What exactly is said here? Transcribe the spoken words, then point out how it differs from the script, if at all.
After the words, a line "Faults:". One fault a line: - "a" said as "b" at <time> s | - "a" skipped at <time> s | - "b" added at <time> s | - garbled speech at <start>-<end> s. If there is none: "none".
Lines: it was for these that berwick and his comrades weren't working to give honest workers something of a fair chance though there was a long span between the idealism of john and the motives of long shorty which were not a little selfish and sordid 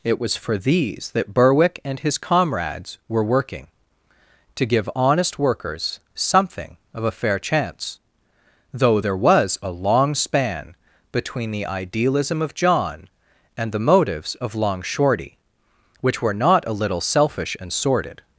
it was for these that berwick and his comrades were working to give honest workers something of a fair chance though there was a long span between the idealism of john and the motives of long shorty which were not a little selfish and sordid
Faults:
- "weren't" said as "were" at 3.1 s